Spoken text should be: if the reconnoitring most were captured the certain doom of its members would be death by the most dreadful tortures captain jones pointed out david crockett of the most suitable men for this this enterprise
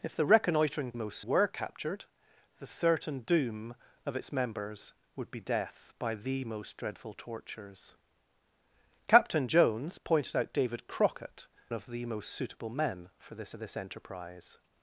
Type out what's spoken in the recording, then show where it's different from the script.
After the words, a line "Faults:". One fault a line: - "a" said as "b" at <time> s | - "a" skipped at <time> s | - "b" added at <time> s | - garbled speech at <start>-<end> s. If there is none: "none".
if the reconnoitring most were captured the certain doom of its members would be death by the most dreadful tortures captain jones pointed out david crockett of the most suitable men for this this enterprise
Faults:
none